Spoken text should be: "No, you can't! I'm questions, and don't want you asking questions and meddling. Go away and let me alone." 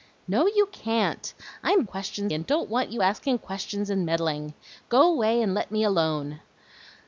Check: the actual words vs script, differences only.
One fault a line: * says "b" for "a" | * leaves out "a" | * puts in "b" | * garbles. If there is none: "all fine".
all fine